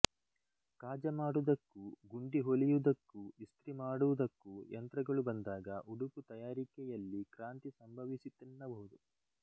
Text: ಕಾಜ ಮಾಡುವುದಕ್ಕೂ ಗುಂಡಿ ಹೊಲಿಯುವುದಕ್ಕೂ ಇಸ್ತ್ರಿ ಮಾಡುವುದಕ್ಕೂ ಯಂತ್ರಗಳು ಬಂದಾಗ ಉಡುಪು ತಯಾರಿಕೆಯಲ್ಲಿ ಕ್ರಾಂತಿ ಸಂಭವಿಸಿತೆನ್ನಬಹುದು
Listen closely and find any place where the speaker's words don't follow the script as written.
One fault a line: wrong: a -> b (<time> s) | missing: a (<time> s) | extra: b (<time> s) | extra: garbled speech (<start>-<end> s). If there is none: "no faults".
no faults